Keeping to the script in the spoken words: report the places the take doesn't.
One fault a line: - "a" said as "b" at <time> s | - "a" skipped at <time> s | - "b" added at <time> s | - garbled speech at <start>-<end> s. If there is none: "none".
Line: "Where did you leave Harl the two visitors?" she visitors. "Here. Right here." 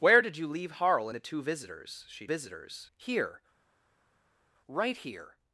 none